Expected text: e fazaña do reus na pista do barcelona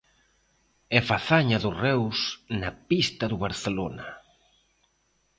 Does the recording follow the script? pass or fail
pass